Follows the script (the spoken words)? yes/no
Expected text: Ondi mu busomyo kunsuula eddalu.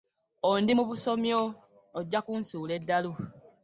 no